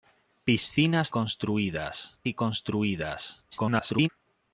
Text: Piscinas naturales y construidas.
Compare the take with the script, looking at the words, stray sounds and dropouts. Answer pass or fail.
fail